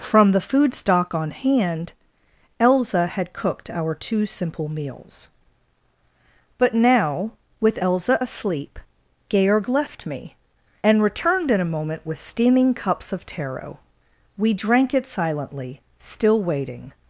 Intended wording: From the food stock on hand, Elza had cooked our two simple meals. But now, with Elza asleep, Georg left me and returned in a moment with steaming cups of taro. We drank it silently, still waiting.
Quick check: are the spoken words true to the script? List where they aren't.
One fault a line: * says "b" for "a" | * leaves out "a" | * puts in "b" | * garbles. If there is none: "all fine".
all fine